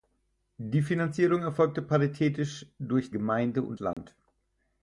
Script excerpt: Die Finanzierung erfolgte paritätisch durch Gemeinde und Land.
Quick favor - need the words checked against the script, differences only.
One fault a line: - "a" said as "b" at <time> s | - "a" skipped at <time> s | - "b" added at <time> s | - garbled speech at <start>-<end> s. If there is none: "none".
none